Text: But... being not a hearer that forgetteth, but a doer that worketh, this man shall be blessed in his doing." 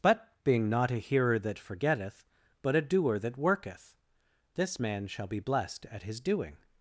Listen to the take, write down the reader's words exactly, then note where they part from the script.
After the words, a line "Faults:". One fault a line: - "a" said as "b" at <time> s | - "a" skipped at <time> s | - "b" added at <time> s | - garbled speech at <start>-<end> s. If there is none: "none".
But... being not a hearer that forgetteth, but a doer that worketh, this man shall be blessed at his doing."
Faults:
- "in" said as "at" at 5.9 s